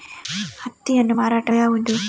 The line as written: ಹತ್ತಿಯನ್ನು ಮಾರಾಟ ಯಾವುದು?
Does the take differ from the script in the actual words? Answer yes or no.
no